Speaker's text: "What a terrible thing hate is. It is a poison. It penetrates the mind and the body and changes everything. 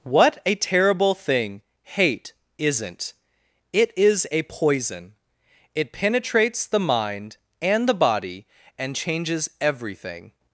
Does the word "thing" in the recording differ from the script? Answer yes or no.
no